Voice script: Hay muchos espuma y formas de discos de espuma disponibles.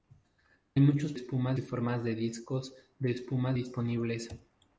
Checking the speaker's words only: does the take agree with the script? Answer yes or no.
yes